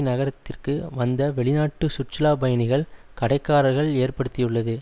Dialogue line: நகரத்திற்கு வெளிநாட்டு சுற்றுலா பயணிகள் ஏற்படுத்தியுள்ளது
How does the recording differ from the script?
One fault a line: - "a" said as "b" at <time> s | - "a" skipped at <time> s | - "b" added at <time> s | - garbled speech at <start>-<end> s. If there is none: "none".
- "வந்த" added at 0.9 s
- "கடைக்காரர்கள்" added at 3.2 s